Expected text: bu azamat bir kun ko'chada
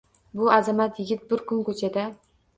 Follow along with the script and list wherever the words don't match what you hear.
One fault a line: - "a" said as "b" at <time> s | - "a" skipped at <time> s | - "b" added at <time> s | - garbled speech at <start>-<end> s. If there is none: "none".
- "yigit" added at 1.0 s